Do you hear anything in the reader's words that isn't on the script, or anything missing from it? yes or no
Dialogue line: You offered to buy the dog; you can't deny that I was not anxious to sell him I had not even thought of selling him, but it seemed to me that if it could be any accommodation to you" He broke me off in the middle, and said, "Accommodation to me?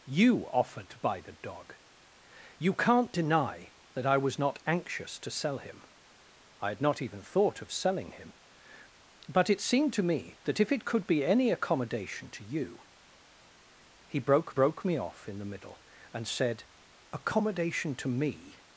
yes